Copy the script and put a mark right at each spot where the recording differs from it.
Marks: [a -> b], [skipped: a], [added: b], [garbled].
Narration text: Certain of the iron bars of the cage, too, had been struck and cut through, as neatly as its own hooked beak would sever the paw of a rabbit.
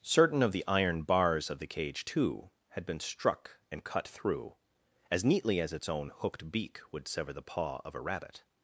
Certain of the iron bars of the cage, too, had been struck and cut through, as neatly as its own hooked beak would sever the paw of a rabbit.